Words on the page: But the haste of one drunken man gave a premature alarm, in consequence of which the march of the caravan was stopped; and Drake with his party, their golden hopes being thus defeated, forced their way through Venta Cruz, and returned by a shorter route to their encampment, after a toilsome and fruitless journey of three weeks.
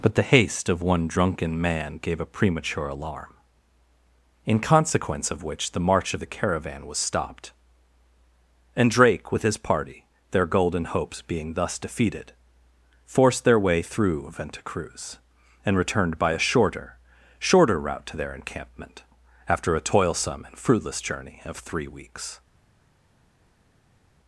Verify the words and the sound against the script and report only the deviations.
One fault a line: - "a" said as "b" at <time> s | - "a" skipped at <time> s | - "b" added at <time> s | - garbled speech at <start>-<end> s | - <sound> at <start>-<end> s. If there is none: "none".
- "shorter" added at 17.4 s